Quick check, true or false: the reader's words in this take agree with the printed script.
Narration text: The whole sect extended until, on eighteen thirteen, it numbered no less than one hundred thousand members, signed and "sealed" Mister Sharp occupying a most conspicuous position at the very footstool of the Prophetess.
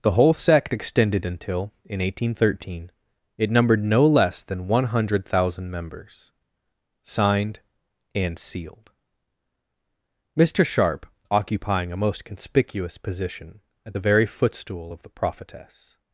false